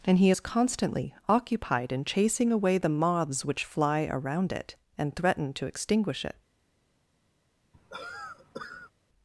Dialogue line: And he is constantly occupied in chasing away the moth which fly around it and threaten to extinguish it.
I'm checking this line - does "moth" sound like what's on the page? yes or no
no